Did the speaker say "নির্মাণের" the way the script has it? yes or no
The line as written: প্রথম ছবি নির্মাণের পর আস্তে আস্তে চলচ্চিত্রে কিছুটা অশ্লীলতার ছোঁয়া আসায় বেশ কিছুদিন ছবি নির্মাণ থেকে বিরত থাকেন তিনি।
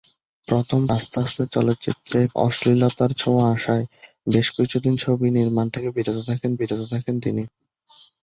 no